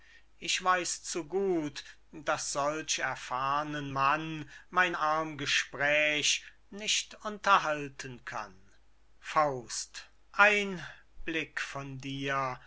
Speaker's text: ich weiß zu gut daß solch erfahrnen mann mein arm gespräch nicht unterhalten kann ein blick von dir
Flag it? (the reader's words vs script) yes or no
no